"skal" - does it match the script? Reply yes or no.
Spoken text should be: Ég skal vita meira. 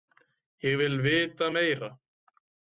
no